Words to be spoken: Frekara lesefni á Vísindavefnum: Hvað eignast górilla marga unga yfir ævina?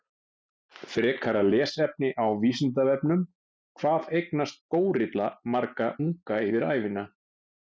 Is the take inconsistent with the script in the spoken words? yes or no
no